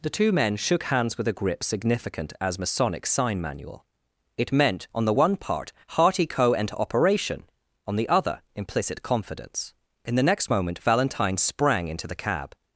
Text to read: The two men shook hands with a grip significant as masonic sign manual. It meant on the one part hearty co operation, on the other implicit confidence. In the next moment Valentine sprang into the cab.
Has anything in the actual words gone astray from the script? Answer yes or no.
no